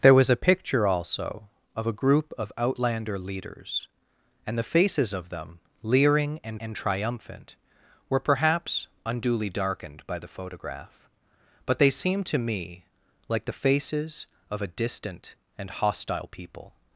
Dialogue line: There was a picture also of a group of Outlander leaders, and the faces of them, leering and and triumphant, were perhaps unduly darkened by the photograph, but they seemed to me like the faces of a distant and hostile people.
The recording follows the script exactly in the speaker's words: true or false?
true